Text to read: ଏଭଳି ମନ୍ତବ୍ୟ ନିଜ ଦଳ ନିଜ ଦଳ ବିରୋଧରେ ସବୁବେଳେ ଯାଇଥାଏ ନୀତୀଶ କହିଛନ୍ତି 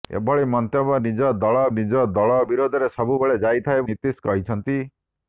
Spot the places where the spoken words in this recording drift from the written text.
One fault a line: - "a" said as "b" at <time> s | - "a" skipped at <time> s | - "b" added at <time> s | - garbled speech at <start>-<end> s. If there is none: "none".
none